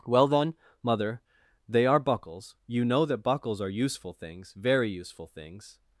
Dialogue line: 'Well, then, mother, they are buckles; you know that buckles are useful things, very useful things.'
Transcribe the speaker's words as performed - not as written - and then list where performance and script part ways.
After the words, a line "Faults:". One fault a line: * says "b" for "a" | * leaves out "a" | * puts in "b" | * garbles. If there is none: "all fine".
'Well, then, mother, they are buckles; you know that buckles are useful things, very useful things.'
Faults:
all fine